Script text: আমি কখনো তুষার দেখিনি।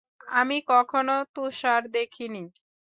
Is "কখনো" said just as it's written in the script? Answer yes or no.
yes